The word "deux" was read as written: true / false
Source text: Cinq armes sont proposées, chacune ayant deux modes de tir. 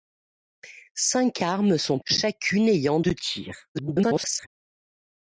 false